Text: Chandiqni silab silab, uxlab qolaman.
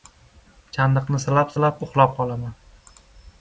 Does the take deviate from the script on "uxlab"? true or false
false